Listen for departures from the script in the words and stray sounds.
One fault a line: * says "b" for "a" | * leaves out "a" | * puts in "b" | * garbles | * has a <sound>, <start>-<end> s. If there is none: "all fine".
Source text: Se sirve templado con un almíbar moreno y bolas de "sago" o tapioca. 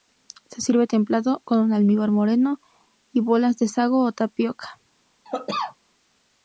* has a cough, 5.2-5.8 s